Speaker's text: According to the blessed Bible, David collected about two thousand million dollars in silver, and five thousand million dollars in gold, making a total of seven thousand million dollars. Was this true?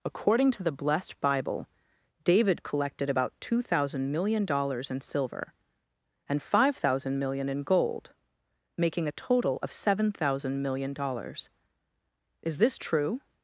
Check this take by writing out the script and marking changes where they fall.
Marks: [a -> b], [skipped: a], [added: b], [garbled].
According to the blessed Bible, David collected about two thousand million dollars in silver, and five thousand million dollars in gold, making a total of seven thousand million dollars. [Was -> Is] this true?